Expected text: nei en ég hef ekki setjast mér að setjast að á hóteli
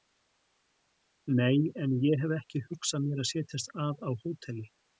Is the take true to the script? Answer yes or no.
no